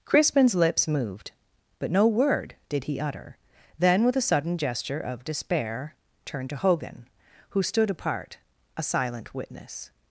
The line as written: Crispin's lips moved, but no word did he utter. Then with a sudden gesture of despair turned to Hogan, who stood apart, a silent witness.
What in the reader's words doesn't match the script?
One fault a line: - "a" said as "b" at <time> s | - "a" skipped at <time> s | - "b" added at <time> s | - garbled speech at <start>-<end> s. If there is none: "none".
none